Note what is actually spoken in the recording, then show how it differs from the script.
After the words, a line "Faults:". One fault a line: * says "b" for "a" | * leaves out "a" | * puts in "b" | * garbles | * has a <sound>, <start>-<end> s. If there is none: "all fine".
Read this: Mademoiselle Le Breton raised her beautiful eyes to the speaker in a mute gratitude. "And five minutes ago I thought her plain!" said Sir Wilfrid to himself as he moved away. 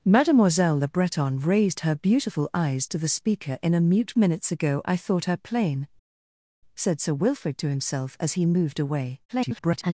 Mademoiselle Le Breton raised her beautiful eyes to the speaker in a mute minutes ago I thought her plain!" said Sir Wilfrid to himself as he moved away. [garbled]
Faults:
* leaves out "gratitude And five"
* garbles